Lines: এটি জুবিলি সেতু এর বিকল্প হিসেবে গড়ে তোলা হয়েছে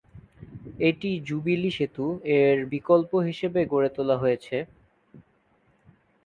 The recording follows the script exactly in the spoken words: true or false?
true